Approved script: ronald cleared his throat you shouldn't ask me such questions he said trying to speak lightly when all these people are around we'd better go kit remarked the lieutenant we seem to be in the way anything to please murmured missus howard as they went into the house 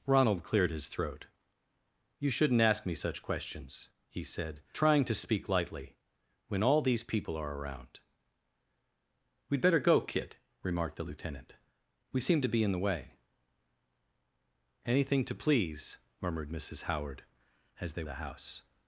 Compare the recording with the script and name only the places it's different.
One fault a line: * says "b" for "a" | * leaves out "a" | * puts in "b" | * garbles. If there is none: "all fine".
* leaves out "went into"